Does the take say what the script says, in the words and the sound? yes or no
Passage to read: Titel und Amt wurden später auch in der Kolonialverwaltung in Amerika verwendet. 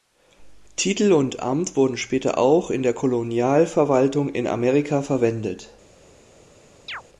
no